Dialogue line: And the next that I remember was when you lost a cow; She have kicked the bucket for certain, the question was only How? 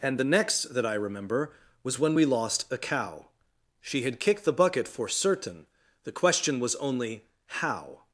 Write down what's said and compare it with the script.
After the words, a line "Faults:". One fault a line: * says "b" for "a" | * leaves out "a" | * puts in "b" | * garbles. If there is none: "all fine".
And the next that I remember was when we lost a cow; She had kicked the bucket for certain, the question was only How?
Faults:
* says "we" for "you"
* says "had" for "have"